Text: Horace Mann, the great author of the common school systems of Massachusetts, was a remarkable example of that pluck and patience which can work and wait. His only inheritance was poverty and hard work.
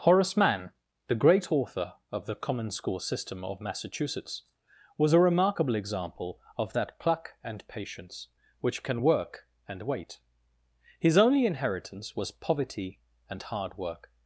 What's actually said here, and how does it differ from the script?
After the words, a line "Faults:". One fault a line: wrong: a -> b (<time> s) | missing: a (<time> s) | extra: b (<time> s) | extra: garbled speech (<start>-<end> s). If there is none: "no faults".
Horace Mann, the great author of the common school system of Massachusetts, was a remarkable example of that pluck and patience which can work and wait. His only inheritance was poverty and hard work.
Faults:
wrong: systems -> system (3.0 s)